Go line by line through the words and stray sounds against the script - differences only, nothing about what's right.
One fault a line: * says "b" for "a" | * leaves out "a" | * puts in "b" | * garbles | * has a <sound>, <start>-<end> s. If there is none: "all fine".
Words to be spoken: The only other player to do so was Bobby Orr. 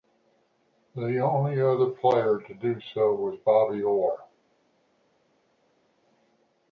all fine